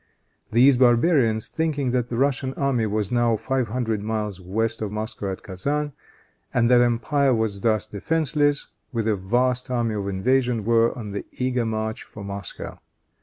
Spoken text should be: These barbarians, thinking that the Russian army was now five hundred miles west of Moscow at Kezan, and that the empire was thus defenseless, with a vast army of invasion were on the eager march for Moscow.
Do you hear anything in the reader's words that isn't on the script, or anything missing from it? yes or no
no